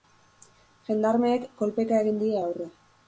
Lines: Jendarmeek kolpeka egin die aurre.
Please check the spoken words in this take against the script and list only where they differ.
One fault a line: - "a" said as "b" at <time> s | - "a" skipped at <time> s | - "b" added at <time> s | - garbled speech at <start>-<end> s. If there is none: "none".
none